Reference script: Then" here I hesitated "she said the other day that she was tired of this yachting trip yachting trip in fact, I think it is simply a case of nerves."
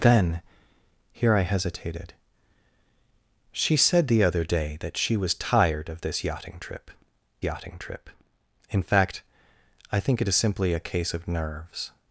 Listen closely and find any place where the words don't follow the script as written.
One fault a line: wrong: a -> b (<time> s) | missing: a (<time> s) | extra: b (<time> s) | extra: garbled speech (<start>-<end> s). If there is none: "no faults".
no faults